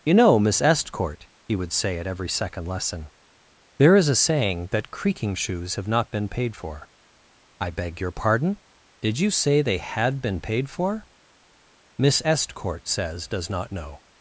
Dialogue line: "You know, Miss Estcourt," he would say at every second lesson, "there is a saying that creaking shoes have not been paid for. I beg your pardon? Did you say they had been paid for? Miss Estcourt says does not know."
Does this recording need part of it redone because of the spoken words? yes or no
no